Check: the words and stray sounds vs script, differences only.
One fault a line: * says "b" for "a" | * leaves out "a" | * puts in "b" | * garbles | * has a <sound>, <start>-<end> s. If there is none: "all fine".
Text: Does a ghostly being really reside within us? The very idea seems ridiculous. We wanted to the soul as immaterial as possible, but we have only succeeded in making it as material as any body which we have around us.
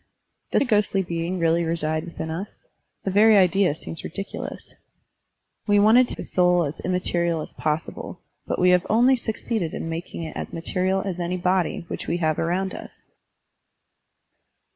all fine